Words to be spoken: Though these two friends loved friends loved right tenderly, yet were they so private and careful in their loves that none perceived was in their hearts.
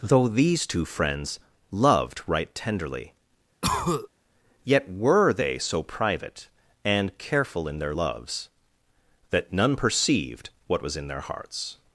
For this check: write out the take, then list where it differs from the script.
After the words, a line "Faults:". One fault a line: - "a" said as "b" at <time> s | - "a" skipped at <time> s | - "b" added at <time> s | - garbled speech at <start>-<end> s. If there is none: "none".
Though these two friends loved right tenderly, yet were they so private and careful in their loves that none perceived what was in their hearts.
Faults:
- "friends loved" skipped at 2.2 s
- "what" added at 10.7 s